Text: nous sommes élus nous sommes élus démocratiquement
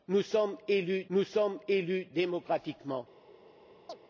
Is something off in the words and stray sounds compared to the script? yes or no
yes